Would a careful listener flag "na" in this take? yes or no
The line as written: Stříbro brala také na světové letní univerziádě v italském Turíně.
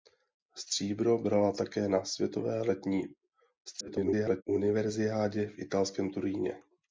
no